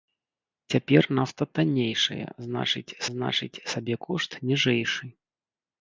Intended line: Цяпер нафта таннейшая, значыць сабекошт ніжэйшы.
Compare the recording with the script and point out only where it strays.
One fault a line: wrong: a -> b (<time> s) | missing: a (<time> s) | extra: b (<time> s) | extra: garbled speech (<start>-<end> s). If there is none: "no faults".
extra: значыць (3.2 s)